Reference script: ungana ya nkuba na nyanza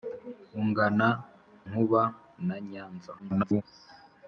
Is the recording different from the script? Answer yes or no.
yes